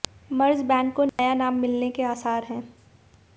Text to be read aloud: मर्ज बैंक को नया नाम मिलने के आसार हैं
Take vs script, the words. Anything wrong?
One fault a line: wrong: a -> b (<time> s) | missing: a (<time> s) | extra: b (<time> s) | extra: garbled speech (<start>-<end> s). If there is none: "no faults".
no faults